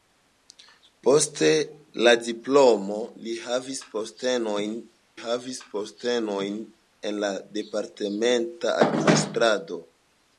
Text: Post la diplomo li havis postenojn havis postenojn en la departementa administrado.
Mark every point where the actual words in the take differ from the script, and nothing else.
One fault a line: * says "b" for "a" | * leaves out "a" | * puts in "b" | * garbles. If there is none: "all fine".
all fine